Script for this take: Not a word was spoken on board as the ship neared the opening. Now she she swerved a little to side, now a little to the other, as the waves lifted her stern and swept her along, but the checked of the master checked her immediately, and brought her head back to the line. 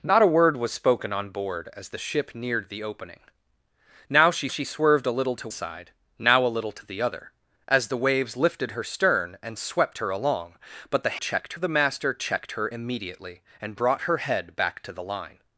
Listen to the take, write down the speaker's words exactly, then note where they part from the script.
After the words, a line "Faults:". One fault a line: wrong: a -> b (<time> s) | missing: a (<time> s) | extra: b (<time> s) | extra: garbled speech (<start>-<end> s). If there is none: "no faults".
Not a word was spoken on board as the ship neared the opening. Now she she swerved a little to side, now a little to the other, as the waves lifted her stern and swept her along, but the checked of the master checked her immediately, and brought her head back to the line.
Faults:
no faults